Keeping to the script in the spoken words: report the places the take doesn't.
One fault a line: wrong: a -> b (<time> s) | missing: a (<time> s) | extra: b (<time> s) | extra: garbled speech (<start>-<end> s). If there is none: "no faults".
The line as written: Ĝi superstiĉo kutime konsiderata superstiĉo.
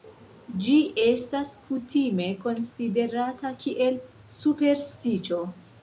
wrong: superstiĉo -> estas (1.0 s)
extra: kiel (3.6 s)